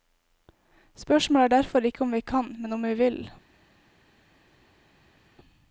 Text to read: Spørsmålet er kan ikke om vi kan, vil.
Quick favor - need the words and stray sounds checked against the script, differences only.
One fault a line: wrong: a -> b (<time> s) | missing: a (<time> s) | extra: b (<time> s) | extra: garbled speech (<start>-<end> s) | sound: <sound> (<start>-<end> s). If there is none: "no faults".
wrong: kan -> derfor (1.6 s)
extra: men om vi (2.6 s)